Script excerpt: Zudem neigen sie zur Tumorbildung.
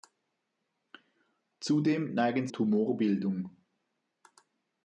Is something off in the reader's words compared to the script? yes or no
yes